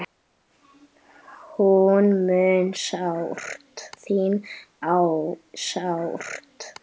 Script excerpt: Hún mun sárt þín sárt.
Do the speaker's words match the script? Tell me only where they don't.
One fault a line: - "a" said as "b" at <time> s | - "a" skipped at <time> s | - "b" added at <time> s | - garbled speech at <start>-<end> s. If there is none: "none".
none